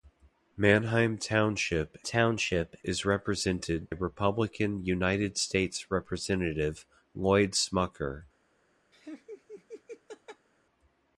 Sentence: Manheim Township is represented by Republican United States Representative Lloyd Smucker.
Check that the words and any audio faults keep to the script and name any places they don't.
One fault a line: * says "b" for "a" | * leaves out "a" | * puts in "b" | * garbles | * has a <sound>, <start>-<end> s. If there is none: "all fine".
* puts in "Township"
* leaves out "by"
* has a laugh, 8.9-10.5 s